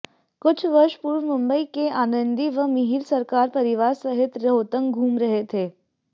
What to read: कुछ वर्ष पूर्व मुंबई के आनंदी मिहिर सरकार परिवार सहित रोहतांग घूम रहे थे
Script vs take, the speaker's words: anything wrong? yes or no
yes